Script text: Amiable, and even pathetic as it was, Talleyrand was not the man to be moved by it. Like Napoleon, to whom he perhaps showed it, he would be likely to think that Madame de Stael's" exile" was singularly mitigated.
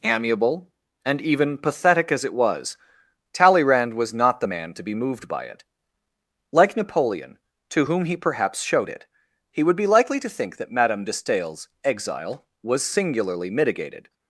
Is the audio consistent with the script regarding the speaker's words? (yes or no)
yes